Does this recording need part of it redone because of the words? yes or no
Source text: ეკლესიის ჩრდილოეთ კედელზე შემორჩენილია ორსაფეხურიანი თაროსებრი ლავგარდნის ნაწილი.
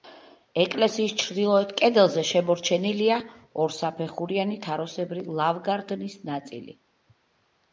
no